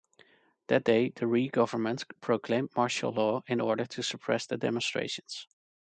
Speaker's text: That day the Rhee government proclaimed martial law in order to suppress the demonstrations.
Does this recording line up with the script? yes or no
yes